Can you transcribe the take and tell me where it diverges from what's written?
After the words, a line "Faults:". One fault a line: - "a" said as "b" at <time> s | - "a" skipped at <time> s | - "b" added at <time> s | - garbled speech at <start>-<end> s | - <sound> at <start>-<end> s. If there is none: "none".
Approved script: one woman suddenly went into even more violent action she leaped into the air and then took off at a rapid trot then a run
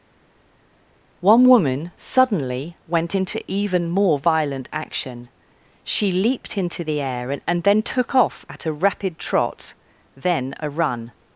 one woman suddenly went into even more violent action she leaped into the air and and then took off at a rapid trot then a run
Faults:
- "and" added at 7.5 s